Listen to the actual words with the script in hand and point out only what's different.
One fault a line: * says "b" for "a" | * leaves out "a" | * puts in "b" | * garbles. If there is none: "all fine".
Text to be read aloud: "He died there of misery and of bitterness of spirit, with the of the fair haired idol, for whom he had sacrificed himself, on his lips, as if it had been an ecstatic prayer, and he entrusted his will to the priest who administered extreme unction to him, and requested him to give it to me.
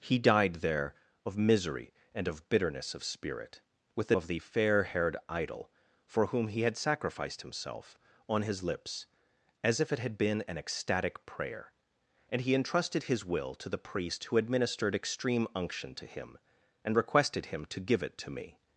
all fine